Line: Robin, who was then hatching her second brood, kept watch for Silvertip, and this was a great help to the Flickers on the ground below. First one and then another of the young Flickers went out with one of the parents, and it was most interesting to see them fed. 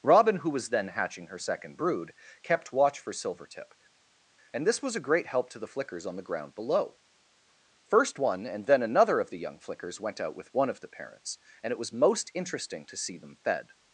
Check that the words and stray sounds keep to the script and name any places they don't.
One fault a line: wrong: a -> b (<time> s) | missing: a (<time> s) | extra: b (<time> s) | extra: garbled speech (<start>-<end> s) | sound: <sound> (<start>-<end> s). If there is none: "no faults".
no faults